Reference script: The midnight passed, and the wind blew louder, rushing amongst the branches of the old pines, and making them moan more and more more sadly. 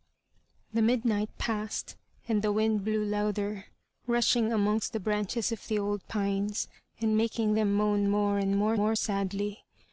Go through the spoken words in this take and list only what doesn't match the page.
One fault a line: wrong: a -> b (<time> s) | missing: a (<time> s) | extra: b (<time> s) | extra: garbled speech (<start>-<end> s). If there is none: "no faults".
no faults